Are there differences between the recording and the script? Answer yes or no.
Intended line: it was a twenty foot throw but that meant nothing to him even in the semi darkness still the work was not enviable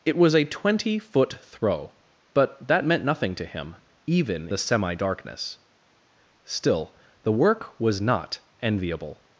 yes